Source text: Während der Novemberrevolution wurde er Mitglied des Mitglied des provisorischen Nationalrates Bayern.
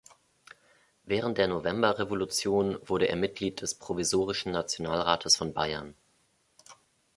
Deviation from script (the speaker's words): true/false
true